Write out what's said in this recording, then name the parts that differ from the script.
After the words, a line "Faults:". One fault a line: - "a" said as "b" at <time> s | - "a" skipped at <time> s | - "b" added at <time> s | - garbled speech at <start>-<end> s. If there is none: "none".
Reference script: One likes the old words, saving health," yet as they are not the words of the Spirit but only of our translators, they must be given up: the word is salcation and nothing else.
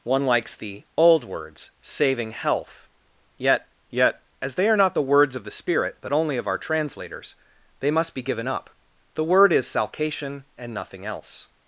One likes the old words, saving health," yet yet as they are not the words of the Spirit but only of our translators, they must be given up: the word is salcation and nothing else.
Faults:
- "yet" added at 3.9 s